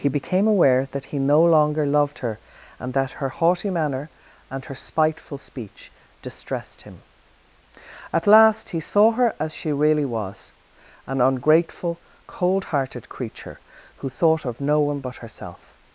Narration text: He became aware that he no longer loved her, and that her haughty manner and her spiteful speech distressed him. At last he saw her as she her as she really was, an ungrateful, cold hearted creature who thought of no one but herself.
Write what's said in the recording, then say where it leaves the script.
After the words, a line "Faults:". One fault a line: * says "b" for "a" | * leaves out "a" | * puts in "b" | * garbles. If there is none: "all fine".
He became aware that he no longer loved her, and that her haughty manner and her spiteful speech distressed him. At last he saw her as she really was, an ungrateful, cold hearted creature who thought of no one but herself.
Faults:
* leaves out "her as she"